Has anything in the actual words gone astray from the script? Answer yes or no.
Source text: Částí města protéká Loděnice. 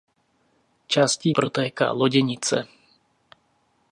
yes